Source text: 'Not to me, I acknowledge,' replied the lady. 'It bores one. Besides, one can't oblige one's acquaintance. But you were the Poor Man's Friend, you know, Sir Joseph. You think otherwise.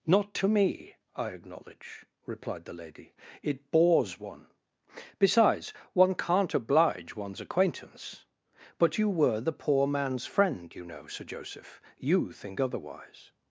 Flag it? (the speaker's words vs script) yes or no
no